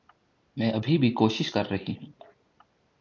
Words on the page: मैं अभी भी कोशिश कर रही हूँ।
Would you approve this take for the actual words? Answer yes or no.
yes